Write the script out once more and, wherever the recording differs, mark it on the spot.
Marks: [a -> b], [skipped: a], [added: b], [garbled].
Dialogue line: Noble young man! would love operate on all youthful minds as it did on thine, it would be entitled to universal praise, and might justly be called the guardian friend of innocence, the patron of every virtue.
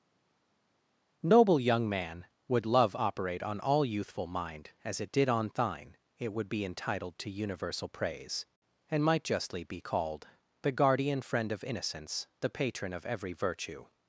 Noble young man! would love operate on all youthful [minds -> mind] as it did on thine, it would be entitled to universal praise, and might justly be called the guardian friend of innocence, the patron of every virtue.